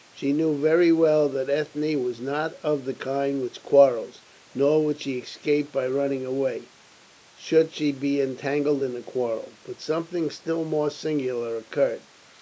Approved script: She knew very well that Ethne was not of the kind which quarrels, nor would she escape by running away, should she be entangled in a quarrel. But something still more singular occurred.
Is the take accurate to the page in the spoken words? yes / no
yes